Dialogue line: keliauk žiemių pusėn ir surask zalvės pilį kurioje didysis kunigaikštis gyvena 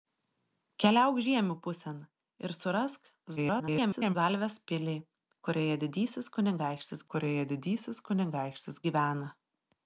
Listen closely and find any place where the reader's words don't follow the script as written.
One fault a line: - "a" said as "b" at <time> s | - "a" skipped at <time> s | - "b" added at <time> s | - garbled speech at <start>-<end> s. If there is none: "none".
- garbled speech at 3.4-4.2 s
- "kurioje didysis kunigaikštis" added at 7.1 s